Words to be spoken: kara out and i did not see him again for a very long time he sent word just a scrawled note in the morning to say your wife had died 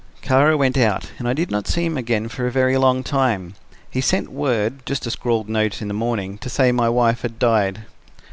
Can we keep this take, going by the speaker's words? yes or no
no